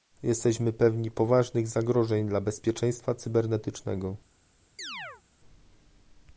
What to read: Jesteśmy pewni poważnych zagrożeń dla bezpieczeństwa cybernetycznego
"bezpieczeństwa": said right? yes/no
yes